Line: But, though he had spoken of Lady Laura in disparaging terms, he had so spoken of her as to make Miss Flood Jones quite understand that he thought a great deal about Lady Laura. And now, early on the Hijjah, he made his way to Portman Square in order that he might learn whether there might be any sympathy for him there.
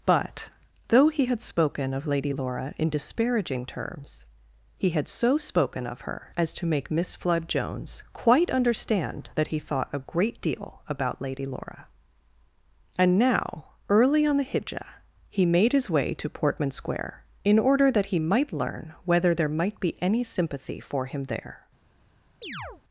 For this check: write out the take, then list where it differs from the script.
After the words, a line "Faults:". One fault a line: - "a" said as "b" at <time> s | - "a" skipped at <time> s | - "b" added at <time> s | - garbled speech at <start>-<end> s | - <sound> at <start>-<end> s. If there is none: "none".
But, though he had spoken of Lady Laura in disparaging terms, he had so spoken of her as to make Miss Flood Jones quite understand that he thought a great deal about Lady Laura. And now, early on the Hijjah, he made his way to Portman Square in order that he might learn whether there might be any sympathy for him there.
Faults:
- chirp at 22.4-22.8 s